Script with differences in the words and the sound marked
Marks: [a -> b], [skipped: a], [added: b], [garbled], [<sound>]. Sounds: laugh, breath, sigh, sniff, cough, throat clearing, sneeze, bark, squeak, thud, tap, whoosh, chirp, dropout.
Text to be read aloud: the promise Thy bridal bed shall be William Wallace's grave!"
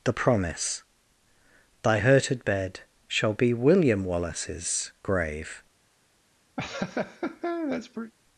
the promise Thy [bridal -> hurted] bed shall be William Wallace's grave!" [laugh]